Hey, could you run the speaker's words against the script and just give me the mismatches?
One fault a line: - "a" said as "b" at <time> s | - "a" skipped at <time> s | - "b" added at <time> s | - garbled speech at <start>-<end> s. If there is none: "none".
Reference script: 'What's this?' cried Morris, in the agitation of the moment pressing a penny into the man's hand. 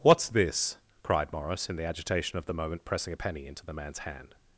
none